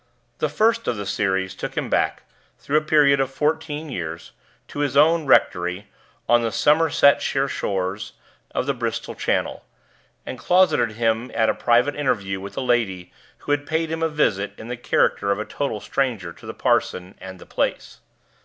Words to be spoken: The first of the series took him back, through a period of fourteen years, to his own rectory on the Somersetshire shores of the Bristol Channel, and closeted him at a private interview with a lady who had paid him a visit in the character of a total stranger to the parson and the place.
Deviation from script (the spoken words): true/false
false